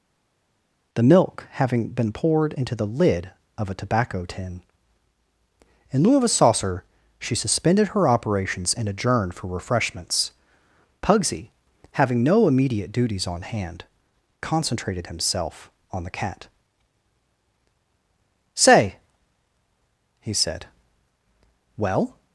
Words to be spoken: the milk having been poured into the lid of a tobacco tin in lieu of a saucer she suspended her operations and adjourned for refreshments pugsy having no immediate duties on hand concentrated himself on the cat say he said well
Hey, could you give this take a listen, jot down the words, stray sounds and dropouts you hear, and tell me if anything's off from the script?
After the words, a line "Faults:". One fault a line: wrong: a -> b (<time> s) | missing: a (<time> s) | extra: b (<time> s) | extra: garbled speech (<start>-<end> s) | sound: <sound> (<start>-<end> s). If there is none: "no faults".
the milk having been poured into the lid of a tobacco tin in lieu of a saucer she suspended her operations and adjourned for refreshments pugsy having no immediate duties on hand concentrated himself on the cat say he said well
Faults:
no faults